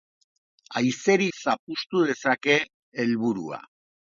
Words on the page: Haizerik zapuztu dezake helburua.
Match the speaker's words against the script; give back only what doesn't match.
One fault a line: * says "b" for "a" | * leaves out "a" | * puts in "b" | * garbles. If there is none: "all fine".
all fine